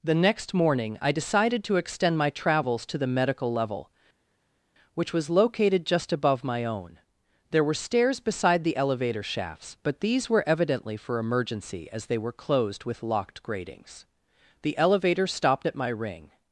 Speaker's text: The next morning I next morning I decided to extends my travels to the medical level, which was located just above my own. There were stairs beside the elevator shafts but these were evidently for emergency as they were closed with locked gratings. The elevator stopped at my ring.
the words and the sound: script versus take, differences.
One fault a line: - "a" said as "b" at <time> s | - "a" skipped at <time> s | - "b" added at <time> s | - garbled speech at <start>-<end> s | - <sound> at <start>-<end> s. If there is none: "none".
- "next morning I" skipped at 1.1 s
- "extends" said as "extend" at 1.8 s